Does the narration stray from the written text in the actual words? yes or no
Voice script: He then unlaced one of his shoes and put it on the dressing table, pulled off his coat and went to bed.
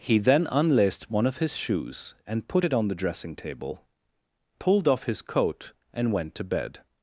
no